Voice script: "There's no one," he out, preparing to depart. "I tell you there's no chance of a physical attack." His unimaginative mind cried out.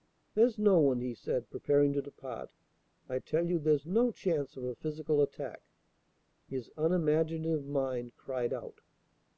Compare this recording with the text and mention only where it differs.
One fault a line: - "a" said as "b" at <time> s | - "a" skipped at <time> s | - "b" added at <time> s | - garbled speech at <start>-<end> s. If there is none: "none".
- "out" said as "said" at 1.1 s